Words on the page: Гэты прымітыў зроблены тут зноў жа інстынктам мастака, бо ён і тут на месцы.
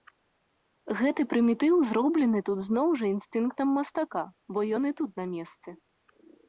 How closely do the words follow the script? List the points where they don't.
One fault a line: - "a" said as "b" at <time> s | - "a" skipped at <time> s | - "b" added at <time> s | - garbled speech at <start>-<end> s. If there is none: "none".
none